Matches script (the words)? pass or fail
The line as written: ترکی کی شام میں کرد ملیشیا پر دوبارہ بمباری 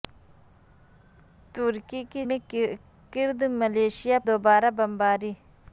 fail